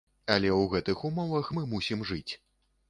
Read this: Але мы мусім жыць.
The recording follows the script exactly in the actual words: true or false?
false